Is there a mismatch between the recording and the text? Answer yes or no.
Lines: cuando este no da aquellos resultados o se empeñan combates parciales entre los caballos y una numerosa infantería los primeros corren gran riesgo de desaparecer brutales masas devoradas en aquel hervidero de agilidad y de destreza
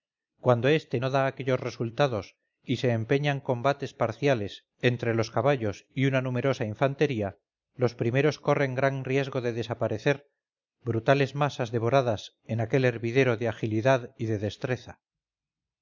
yes